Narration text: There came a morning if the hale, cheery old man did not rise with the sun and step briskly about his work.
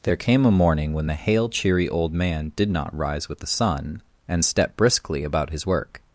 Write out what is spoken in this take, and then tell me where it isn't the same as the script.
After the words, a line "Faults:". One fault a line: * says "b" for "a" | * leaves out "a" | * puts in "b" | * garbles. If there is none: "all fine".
There came a morning when the hale, cheery old man did not rise with the sun and step briskly about his work.
Faults:
* says "when" for "if"